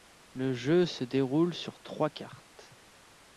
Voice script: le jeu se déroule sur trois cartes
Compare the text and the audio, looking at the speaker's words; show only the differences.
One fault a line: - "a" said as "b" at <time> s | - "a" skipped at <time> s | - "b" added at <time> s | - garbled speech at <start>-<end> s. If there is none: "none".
none